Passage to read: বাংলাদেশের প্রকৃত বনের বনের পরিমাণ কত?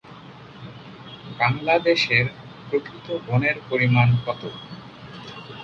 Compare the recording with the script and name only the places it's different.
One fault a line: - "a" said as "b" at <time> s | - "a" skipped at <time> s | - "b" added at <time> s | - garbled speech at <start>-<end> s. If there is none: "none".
- "বনের" skipped at 3.6 s